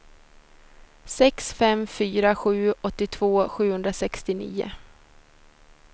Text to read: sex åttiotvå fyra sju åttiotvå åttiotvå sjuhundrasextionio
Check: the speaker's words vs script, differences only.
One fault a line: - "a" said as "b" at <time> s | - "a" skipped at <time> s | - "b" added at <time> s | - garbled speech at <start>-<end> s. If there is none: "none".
- "åttiotvå" said as "fem" at 1.5 s
- "åttiotvå" skipped at 3.5 s